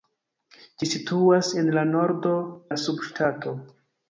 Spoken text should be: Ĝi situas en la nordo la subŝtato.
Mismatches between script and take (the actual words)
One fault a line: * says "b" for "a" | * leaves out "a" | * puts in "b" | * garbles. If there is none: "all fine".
all fine